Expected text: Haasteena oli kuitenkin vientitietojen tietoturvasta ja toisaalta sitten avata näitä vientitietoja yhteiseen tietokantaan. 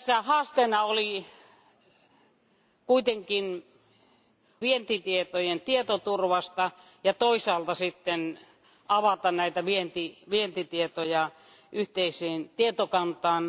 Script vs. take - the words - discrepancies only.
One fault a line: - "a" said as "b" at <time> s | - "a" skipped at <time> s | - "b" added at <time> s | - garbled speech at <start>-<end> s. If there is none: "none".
none